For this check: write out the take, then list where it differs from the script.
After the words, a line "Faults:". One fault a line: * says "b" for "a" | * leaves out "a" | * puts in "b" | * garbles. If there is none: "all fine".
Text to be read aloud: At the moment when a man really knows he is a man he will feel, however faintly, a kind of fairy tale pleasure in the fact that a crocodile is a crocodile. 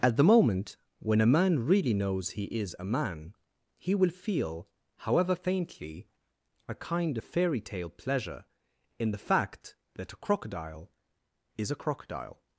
At the moment when a man really knows he is a man he will feel, however faintly, a kind of fairy tale pleasure in the fact that a crocodile is a crocodile.
Faults:
all fine